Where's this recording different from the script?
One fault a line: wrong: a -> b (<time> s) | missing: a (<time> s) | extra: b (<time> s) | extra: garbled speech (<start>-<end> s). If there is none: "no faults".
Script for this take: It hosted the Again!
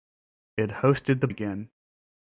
no faults